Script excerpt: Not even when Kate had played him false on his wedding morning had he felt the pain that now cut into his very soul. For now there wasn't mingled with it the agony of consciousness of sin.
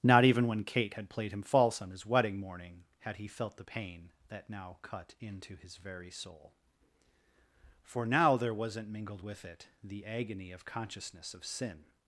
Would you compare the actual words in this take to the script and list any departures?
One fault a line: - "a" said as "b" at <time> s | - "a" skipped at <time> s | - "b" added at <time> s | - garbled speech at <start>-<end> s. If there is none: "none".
none